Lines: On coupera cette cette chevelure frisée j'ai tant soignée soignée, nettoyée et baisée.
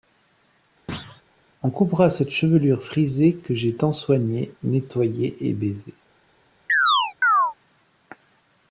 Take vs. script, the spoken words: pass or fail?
fail